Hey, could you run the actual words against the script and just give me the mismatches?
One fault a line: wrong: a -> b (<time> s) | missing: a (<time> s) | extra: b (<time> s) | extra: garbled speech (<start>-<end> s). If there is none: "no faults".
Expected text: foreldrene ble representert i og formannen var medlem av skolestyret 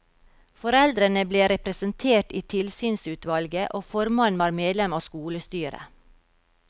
extra: tilsynsutvalget (2.5 s)